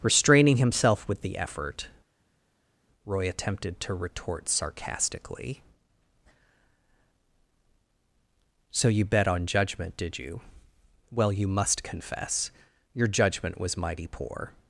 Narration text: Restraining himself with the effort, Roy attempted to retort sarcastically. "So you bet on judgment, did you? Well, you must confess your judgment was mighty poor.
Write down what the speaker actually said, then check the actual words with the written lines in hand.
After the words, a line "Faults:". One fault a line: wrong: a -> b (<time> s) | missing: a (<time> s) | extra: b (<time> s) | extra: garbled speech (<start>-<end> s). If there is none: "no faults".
Restraining himself with the effort, Roy attempted to retort sarcastically. "So you bet on judgment, did you? Well, you must confess your judgment was mighty poor.
Faults:
no faults